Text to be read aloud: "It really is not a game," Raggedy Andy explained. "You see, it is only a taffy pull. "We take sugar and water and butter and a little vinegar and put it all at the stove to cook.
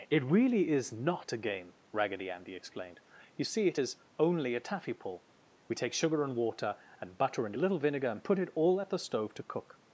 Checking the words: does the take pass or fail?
pass